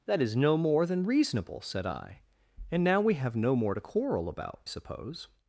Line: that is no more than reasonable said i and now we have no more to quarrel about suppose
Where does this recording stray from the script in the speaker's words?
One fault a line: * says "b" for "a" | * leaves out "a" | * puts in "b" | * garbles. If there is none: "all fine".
all fine